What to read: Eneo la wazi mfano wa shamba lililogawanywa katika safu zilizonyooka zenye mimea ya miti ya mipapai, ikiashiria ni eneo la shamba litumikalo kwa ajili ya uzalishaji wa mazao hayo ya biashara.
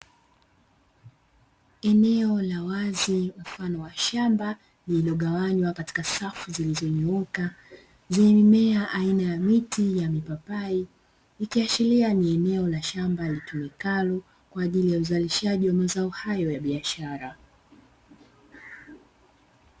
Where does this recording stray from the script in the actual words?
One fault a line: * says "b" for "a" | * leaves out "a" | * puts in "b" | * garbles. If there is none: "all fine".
* puts in "aina"